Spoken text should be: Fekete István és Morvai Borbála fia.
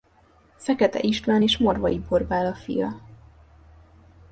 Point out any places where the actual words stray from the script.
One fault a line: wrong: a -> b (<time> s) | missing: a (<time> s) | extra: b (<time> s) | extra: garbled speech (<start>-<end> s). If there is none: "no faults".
no faults